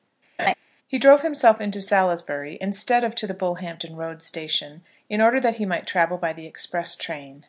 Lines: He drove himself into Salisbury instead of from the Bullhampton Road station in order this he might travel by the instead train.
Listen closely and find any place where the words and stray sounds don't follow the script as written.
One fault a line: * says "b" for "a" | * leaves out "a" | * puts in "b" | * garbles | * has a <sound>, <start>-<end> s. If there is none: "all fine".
* has a laugh, 0.4-0.5 s
* says "to" for "from"
* says "that" for "this"
* says "express" for "instead"